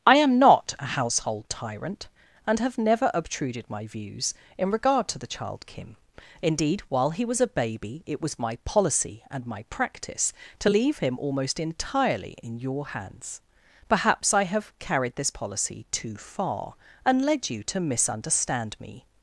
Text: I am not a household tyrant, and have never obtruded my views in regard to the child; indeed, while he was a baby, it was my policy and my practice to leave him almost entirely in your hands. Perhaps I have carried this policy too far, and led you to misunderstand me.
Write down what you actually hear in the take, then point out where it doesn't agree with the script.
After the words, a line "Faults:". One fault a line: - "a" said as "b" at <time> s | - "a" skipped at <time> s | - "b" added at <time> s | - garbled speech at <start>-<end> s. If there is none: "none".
I am not a household tyrant, and have never obtruded my views in regard to the child; kim indeed, while he was a baby, it was my policy and my practice to leave him almost entirely in your hands. Perhaps I have carried this policy too far, and led you to misunderstand me.
Faults:
- "kim" added at 5.7 s